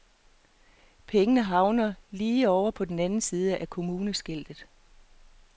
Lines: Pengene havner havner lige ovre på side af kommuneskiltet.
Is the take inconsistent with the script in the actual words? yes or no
yes